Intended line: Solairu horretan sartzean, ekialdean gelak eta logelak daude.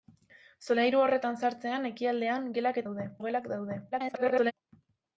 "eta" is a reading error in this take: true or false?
true